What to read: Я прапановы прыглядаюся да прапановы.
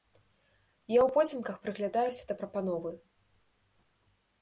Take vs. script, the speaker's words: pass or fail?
fail